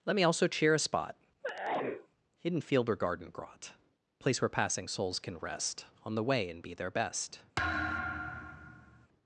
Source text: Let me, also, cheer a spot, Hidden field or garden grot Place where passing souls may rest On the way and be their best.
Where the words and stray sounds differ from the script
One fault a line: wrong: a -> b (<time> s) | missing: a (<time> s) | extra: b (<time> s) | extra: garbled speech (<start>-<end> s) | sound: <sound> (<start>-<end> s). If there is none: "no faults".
sound: sneeze (1.4-2.1 s)
wrong: may -> can (5.2 s)
sound: thud (7.6-9.1 s)